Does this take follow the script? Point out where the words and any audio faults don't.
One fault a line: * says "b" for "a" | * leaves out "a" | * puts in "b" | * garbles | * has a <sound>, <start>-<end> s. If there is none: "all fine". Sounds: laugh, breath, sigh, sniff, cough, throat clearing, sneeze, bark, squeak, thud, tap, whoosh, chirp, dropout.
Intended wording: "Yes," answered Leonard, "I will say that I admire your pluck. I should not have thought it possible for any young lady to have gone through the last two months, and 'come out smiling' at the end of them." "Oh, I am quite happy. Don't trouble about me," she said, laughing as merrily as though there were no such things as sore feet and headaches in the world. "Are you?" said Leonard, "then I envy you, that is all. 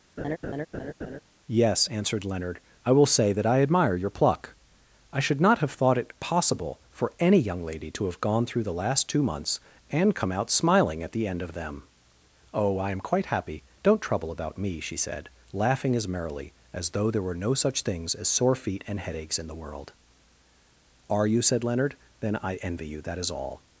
* has a laugh, 0.2-1.2 s